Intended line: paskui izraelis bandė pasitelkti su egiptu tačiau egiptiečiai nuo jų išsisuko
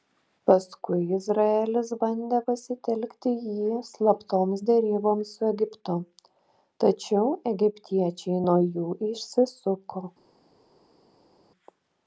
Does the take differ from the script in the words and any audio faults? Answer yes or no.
yes